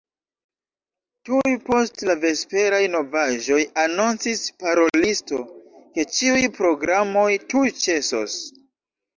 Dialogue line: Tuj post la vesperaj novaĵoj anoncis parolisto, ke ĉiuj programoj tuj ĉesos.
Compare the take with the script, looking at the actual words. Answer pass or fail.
pass